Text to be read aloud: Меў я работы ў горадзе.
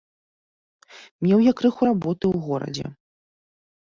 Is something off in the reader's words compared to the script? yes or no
yes